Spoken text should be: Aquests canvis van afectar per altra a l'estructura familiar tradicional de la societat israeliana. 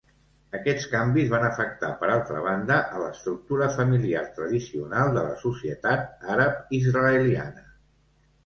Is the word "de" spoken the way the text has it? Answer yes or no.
yes